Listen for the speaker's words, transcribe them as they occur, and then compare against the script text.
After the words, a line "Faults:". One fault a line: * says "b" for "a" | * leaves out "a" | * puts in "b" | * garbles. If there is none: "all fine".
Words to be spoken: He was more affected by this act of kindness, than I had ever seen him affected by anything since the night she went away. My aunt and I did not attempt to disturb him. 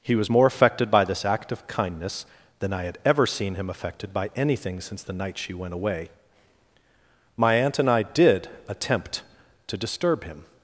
He was more affected by this act of kindness, than I had ever seen him affected by anything since the night she went away. My aunt and I did attempt to disturb him.
Faults:
* leaves out "not"